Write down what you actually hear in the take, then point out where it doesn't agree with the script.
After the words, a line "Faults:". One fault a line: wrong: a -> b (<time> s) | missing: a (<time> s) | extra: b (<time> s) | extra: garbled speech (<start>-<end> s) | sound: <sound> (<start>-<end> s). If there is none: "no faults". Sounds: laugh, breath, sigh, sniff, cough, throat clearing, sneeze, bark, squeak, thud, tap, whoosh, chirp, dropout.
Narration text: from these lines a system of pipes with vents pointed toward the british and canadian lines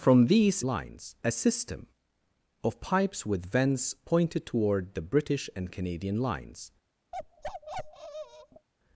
from these lines a system of pipes with vents pointed toward the british and canadian lines
Faults:
sound: bark (7.1-8.7 s)